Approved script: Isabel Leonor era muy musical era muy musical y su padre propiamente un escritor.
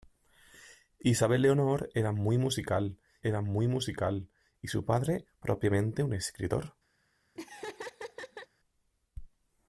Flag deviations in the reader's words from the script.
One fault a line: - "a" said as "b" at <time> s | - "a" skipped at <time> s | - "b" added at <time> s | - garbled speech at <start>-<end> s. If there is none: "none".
none